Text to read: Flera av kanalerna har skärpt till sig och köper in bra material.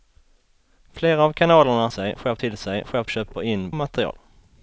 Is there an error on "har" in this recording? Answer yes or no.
yes